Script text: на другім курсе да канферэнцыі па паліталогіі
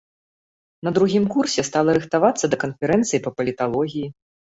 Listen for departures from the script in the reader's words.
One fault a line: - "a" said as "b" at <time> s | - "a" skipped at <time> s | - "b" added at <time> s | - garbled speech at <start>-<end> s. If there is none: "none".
- "стала рыхтавацца" added at 1.7 s